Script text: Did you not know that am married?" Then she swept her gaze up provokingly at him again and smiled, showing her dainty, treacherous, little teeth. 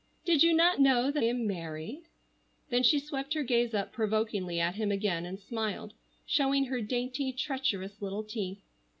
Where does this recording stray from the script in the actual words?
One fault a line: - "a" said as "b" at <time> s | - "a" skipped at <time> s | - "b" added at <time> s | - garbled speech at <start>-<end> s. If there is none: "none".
none